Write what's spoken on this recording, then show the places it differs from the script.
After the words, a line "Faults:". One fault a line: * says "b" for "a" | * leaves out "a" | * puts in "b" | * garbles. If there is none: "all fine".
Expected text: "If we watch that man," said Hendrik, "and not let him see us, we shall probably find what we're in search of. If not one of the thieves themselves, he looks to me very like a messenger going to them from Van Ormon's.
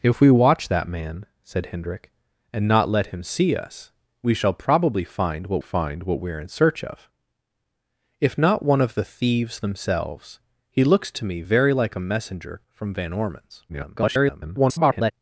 "If we watch that man," said Hendrik, "and not let him see us, we shall probably find what find what we're in search of. If not one of the thieves themselves, he looks to me very like a messenger from Van Ormon's. [garbled]
Faults:
* puts in "find what"
* leaves out "going to them"
* garbles